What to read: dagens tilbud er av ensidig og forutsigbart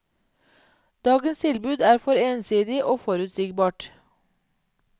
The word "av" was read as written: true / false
false